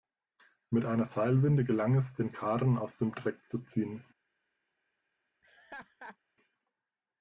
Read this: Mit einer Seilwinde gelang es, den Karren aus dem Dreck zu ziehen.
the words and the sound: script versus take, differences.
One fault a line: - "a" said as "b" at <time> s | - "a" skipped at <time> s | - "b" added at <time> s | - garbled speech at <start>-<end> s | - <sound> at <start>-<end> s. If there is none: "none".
- laugh at 5.4-6.2 s